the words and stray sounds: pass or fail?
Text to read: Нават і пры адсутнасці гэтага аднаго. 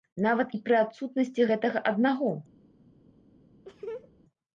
fail